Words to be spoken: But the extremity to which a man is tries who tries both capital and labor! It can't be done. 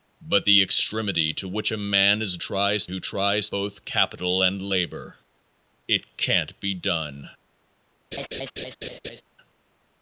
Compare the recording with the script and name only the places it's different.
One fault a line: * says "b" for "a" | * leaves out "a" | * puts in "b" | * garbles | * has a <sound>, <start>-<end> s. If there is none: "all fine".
* has a laugh, 8.1-9.2 s